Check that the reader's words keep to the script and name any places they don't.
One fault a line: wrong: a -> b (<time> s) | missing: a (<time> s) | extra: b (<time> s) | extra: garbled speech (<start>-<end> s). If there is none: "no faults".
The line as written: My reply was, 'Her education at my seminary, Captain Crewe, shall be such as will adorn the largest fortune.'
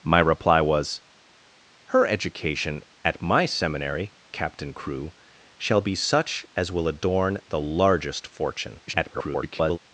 extra: garbled speech (8.9-9.8 s)